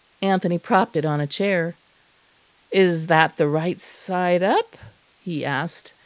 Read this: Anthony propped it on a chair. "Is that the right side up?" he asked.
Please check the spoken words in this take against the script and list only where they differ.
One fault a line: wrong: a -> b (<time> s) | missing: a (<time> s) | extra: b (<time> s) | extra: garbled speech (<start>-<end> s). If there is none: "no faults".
no faults